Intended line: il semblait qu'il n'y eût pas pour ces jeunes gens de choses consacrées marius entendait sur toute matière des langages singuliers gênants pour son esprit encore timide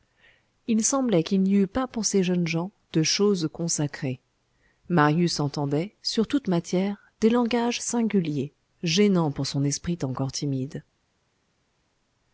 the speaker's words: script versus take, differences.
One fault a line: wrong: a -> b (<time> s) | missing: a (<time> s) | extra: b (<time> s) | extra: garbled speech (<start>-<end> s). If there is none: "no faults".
no faults